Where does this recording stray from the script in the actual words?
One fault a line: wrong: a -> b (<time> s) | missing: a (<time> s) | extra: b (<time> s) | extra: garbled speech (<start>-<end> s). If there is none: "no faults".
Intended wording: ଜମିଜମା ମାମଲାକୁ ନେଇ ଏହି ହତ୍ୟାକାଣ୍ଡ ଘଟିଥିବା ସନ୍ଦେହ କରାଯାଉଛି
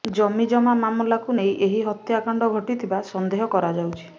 no faults